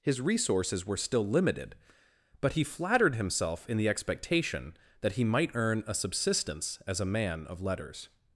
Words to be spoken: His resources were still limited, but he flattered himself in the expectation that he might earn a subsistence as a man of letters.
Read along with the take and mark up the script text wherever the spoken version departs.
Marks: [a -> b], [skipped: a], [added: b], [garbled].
His resources were still limited, but he flattered himself in the expectation that he might earn a subsistence as a man of letters.